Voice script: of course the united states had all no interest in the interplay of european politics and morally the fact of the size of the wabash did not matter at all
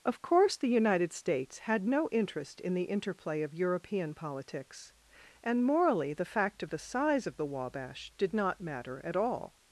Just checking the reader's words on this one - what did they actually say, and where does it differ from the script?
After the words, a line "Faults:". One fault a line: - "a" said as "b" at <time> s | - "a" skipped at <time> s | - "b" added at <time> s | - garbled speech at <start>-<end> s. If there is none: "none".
of course the united states had no interest in the interplay of european politics and morally the fact of the size of the wabash did not matter at all
Faults:
- "all" skipped at 1.9 s